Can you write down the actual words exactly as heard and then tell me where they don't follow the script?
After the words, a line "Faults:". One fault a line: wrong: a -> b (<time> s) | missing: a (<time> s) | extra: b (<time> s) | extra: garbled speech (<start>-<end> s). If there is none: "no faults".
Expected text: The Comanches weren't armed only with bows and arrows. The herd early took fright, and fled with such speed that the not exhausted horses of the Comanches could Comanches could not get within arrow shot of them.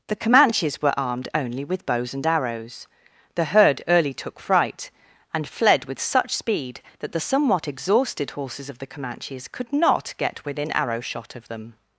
The Comanches were armed only with bows and arrows. The herd early took fright, and fled with such speed that the somewhat exhausted horses of the Comanches could not get within arrow shot of them.
Faults:
wrong: weren't -> were (0.8 s)
wrong: not -> somewhat (7.2 s)
missing: Comanches could (9.7 s)